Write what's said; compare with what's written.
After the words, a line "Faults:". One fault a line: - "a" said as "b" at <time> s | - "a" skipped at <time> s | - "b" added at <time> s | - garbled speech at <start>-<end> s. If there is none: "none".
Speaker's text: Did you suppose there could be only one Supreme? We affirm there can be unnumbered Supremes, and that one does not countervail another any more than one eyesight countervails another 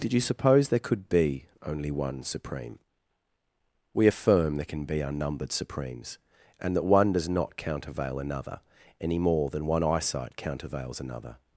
Did you suppose there could be only one Supreme? We affirm there can be unnumbered Supremes, and that one does not countervail another any more than one eyesight countervails another
Faults:
none